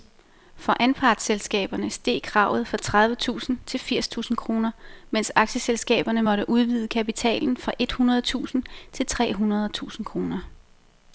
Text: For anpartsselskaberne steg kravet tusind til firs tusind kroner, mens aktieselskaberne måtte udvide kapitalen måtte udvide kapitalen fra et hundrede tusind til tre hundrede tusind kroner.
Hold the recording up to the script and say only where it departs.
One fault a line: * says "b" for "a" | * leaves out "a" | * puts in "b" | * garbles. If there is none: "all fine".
* puts in "fra tredive"
* leaves out "måtte udvide kapitalen"